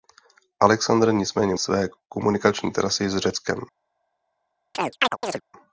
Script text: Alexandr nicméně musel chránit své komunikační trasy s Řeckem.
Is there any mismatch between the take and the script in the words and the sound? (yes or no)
yes